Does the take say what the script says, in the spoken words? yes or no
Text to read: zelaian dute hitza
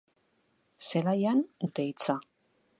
yes